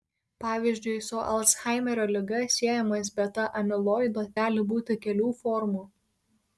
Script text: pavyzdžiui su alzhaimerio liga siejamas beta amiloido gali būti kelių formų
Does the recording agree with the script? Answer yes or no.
yes